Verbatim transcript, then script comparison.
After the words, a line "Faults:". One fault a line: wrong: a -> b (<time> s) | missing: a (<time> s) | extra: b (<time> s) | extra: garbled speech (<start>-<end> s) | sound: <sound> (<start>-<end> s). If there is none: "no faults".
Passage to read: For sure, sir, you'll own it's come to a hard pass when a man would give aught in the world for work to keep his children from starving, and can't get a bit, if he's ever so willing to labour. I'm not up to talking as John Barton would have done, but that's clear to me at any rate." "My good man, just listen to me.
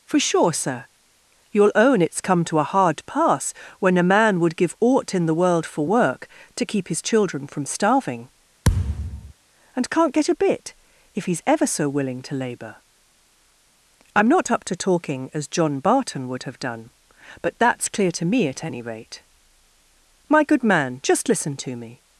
For sure, sir, you'll own it's come to a hard pass when a man would give aught in the world for work to keep his children from starving, and can't get a bit, if he's ever so willing to labour. I'm not up to talking as John Barton would have done, but that's clear to me at any rate." "My good man, just listen to me.
Faults:
sound: thud (8.6-9.3 s)